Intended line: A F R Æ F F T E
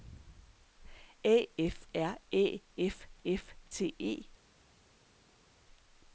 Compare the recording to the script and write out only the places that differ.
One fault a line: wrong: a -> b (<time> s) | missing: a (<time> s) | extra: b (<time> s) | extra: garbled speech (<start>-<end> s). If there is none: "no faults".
no faults